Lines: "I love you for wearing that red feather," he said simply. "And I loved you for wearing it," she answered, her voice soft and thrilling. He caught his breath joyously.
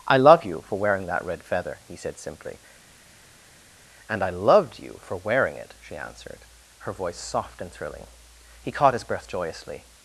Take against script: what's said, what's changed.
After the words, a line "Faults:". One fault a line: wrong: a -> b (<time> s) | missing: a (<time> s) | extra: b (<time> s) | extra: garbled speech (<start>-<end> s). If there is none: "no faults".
"I love you for wearing that red feather," he said simply. "And I loved you for wearing it," she answered, her voice soft and thrilling. He caught his breath joyously.
Faults:
no faults